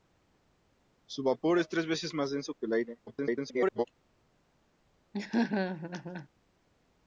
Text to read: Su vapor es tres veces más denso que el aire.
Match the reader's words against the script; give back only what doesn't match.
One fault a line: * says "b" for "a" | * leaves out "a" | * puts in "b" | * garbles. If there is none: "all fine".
* garbles